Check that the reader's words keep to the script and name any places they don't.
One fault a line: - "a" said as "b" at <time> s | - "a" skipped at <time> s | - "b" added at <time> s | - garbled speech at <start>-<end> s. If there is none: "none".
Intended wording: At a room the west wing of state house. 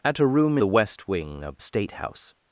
none